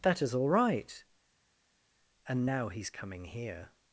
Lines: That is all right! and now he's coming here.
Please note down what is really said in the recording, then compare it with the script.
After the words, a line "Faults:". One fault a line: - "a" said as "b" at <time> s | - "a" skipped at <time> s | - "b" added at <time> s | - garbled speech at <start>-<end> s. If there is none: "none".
That is all right! and now he's coming here.
Faults:
none